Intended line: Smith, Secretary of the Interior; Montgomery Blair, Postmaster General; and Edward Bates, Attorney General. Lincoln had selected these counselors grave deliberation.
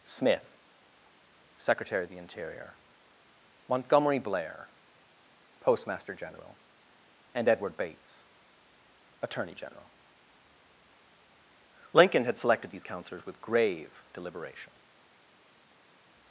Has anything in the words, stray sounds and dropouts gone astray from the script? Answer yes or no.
yes